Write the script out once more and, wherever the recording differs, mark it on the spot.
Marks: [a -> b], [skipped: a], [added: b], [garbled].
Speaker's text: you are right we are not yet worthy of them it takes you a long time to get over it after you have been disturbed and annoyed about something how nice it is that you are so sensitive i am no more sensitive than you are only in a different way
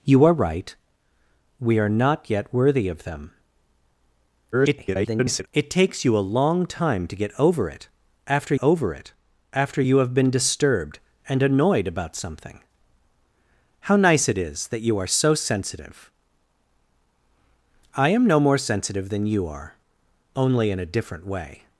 you are right we are not yet worthy of them [garbled] it takes you a long time to get over it after [added: over it after] you have been disturbed and annoyed about something how nice it is that you are so sensitive i am no more sensitive than you are only in a different way